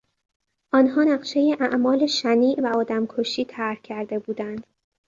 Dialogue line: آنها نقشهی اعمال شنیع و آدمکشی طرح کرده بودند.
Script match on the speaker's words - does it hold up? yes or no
yes